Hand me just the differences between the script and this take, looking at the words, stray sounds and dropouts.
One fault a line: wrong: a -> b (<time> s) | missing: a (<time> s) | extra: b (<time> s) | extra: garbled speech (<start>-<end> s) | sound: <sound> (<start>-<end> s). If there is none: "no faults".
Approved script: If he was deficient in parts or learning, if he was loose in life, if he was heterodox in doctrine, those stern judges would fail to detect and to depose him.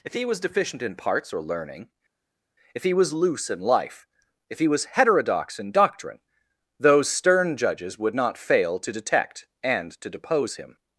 extra: not (8.1 s)